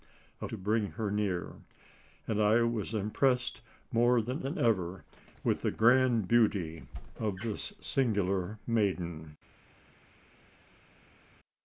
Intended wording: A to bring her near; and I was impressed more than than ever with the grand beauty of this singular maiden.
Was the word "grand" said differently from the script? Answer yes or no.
no